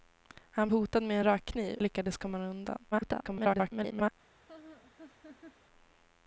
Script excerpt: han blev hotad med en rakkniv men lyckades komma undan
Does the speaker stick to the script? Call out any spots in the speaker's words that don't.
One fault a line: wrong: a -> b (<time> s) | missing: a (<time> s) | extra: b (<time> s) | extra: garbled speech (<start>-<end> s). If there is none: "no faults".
missing: blev (0.7 s)
missing: men (1.8 s)
extra: garbled speech (2.9-4.1 s)